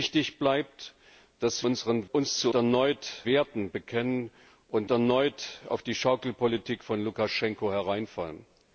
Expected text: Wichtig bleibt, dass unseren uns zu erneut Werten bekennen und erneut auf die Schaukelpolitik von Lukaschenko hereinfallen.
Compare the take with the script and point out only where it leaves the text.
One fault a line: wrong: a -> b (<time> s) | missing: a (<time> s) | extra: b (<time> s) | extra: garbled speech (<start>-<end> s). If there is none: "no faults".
no faults